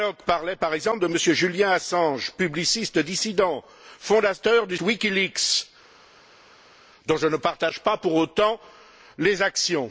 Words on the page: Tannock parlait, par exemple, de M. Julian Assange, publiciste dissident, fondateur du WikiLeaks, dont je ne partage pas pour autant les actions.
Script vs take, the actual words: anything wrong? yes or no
no